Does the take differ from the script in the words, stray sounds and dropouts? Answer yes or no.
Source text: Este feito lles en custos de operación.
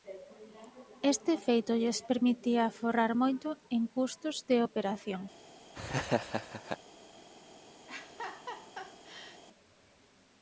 yes